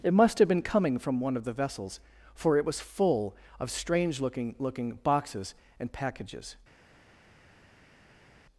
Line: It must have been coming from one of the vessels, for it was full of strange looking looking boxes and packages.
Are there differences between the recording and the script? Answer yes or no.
no